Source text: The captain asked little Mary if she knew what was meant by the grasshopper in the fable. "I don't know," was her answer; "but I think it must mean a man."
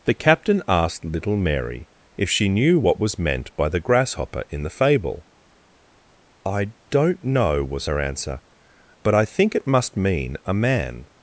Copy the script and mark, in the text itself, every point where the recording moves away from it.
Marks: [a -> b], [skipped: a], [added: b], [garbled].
The captain asked little Mary if she knew what was meant by the grasshopper in the fable. "I don't know," was her answer; "but I think it must mean a man."